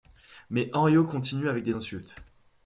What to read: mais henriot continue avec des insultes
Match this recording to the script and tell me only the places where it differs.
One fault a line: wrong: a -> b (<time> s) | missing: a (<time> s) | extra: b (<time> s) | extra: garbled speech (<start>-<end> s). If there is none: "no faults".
no faults